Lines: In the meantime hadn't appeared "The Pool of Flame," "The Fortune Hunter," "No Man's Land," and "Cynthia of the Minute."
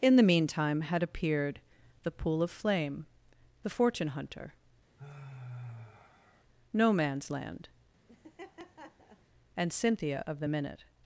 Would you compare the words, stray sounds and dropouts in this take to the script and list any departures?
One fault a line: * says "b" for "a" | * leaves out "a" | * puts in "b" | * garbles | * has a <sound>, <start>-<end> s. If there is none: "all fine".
* says "had" for "hadn't"
* has a sigh, 5.0-6.4 s
* has a laugh, 8.1-9.2 s